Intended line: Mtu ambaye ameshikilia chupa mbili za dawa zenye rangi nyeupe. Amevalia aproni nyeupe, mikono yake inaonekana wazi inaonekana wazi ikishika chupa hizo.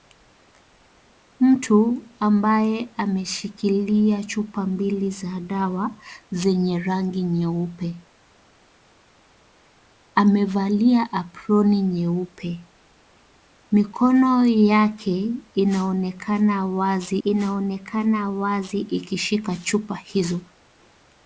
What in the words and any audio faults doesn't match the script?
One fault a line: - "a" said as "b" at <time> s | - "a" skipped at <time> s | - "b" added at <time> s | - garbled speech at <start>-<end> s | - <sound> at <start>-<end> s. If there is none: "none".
none